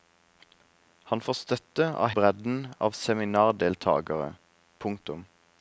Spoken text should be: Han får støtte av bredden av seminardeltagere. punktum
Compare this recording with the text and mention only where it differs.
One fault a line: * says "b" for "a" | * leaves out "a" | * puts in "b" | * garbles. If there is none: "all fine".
all fine